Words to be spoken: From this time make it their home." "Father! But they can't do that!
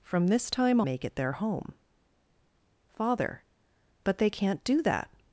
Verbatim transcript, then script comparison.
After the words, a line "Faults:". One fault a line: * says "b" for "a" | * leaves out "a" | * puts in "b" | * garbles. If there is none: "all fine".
From this time make it their home." "Father! But they can't do that!
Faults:
all fine